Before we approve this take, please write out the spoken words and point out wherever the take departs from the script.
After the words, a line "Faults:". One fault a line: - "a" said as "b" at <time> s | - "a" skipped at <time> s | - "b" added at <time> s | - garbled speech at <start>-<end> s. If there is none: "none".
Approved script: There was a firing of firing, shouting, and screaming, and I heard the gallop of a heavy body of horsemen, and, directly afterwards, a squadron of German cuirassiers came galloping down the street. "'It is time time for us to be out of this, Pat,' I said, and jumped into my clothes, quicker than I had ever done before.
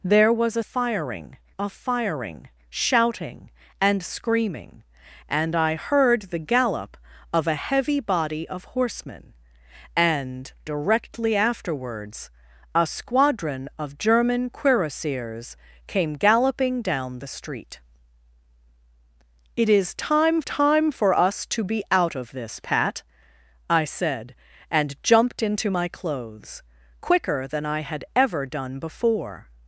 There was a firing of firing, shouting, and screaming, and I heard the gallop of a heavy body of horsemen, and, directly afterwards, a squadron of German cuirassiers came galloping down the street. "'It is time time for us to be out of this, Pat,' I said, and jumped into my clothes, quicker than I had ever done before.
Faults:
none